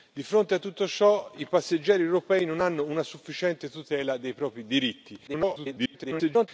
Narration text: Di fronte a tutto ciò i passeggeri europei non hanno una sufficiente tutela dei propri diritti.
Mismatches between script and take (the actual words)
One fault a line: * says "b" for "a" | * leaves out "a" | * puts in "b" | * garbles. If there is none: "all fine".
* garbles